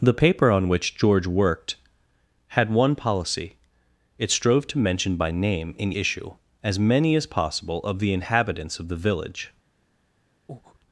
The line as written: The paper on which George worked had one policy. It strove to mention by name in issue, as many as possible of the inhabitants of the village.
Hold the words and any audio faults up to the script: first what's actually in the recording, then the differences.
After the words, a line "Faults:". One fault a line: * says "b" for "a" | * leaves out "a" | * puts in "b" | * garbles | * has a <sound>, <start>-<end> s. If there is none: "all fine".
The paper on which George worked had one policy. It strove to mention by name in issue, as many as possible of the inhabitants of the village.
Faults:
* has a breath, 10.5-10.8 s